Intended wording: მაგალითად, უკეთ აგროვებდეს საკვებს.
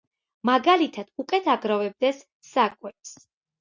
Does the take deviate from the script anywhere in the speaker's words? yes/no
no